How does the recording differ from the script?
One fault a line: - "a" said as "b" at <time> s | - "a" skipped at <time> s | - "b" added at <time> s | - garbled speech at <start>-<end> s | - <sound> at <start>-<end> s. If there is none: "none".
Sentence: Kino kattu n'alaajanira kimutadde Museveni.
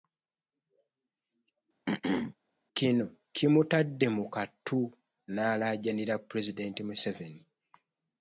- throat clearing at 1.9-2.4 s
- "kimutadde mu" added at 3.3 s
- "kimutadde" said as "pulezidenti" at 6.3 s